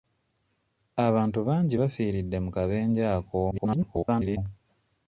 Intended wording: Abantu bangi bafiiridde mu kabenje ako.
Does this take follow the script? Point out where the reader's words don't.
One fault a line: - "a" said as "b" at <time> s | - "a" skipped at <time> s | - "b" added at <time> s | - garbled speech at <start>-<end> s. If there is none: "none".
- garbled speech at 3.5-4.4 s